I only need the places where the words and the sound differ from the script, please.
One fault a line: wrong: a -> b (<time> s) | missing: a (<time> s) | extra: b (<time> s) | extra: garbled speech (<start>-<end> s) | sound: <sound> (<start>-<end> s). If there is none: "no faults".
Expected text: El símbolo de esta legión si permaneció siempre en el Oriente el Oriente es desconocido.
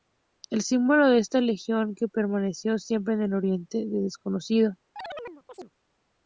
wrong: si -> que (1.9 s)
missing: el Oriente (3.8 s)
sound: chirp (5.0-5.7 s)